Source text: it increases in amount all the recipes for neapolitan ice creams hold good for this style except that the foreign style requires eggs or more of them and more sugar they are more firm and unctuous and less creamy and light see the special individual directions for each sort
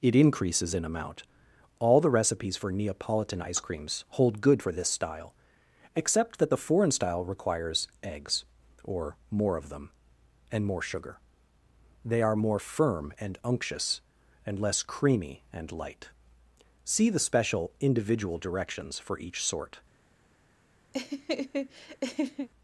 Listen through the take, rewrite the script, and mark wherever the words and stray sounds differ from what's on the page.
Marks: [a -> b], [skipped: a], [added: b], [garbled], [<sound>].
it increases in amount all the recipes for neapolitan ice creams hold good for this style except that the foreign style requires eggs or more of them and more sugar they are more firm and unctuous and less creamy and light see the special individual directions for each sort [laugh]